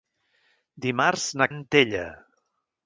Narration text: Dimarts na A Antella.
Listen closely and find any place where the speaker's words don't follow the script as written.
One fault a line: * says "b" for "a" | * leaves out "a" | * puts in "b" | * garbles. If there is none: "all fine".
all fine